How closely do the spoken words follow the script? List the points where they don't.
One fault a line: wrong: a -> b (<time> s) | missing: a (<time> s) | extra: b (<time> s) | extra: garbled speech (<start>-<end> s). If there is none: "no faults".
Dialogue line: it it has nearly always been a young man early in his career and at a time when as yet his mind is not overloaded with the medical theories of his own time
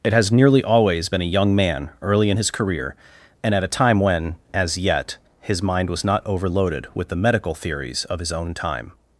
missing: it (0.1 s)
wrong: is -> was (5.9 s)